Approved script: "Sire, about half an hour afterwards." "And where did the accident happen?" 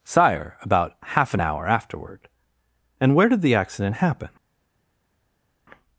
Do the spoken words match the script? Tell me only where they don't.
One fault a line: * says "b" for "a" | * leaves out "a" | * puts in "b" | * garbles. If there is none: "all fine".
* says "afterward" for "afterwards"